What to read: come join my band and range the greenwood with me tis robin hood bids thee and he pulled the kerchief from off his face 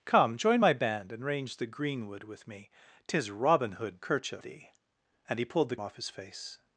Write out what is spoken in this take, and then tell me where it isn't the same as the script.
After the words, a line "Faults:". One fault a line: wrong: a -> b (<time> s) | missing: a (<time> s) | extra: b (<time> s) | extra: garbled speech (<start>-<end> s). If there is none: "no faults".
come join my band and range the greenwood with me tis robin hood kerchief thee and he pulled the off his face
Faults:
wrong: bids -> kerchief (4.0 s)
missing: kerchief from (5.8 s)